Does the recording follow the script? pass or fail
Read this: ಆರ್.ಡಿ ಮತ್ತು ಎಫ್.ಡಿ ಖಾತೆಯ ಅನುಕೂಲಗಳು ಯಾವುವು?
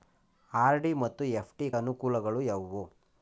fail